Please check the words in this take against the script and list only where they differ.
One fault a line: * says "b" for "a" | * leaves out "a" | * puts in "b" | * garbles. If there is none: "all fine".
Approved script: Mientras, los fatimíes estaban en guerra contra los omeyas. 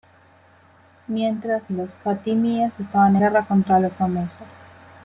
* leaves out "en"